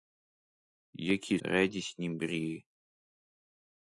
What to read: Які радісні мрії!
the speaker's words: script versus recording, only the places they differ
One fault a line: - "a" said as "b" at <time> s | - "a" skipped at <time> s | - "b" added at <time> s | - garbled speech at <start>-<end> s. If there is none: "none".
none